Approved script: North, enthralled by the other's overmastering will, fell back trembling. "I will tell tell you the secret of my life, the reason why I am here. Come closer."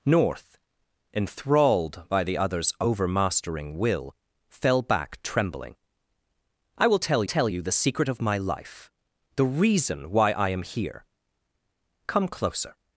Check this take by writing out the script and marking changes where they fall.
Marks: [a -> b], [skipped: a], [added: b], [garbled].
North, enthralled by the other's overmastering will, fell back trembling. "I will tell tell you the secret of my life, the reason why I am here. Come closer."